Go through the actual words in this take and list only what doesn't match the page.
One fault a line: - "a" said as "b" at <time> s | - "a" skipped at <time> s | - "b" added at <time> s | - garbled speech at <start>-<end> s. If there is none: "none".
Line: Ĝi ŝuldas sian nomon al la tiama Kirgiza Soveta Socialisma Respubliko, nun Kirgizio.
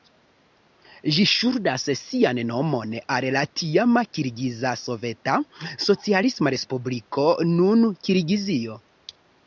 none